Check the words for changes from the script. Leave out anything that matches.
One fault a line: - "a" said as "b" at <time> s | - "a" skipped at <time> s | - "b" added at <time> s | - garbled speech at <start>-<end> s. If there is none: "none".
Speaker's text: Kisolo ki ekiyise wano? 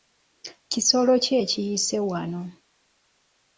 none